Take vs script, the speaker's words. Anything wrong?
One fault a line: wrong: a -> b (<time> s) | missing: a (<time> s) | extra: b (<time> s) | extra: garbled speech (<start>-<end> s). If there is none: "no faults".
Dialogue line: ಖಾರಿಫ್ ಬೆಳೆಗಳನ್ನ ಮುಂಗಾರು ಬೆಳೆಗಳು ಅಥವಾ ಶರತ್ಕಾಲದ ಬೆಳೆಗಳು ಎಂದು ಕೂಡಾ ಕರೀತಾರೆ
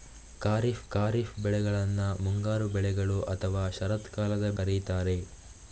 extra: ಖಾರಿಫ್ (0.9 s)
missing: ಬೆಳೆಗಳು ಎಂದು ಕೂಡಾ (4.5 s)